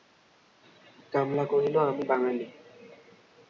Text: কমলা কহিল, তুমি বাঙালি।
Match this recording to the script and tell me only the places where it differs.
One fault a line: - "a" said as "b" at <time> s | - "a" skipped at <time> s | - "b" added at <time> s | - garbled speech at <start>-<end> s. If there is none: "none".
- "তুমি" said as "আমি" at 1.8 s